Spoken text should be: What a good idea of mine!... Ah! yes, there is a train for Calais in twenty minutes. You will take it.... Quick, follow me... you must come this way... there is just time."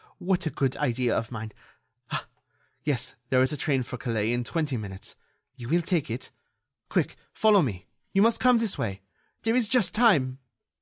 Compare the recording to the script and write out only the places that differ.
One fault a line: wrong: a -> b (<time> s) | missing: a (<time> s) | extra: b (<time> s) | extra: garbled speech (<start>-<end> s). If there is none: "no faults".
no faults